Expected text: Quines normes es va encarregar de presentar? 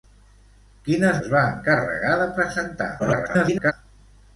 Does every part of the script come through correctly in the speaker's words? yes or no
no